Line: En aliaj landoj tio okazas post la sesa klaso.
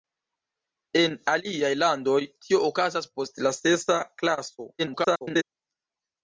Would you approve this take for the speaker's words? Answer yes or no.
no